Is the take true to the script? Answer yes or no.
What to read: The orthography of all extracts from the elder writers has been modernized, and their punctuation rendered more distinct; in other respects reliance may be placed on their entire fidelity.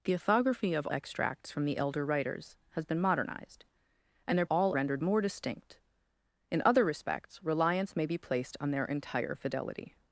no